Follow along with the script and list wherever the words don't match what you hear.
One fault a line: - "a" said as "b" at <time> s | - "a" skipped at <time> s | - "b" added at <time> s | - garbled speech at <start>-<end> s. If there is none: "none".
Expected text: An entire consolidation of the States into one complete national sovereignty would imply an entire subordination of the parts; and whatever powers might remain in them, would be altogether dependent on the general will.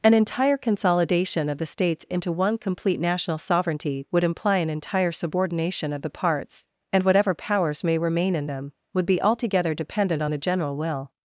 - "might" said as "may" at 7.8 s